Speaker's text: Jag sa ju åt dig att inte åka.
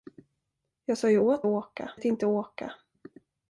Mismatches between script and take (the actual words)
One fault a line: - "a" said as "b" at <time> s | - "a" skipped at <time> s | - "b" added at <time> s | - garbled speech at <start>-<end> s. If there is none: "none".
- "dig" said as "åka" at 1.4 s